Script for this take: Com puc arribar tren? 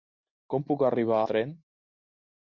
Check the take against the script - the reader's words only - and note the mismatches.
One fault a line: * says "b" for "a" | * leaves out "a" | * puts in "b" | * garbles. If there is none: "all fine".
all fine